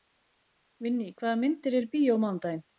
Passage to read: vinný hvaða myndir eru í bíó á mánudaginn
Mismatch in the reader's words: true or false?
false